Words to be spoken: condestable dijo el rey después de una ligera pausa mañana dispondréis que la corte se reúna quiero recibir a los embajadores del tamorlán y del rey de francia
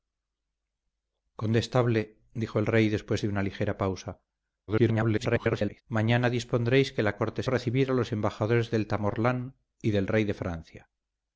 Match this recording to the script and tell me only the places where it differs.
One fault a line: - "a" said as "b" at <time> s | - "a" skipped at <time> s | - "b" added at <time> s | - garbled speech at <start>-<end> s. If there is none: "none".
- garbled speech at 4.7-5.8 s
- "se reúna quiero" skipped at 7.4 s